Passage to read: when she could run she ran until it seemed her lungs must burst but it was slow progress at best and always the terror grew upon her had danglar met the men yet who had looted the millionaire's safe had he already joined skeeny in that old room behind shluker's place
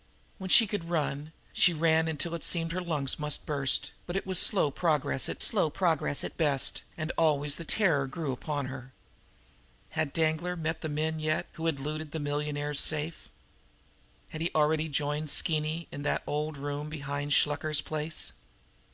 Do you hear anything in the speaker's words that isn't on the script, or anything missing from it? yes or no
yes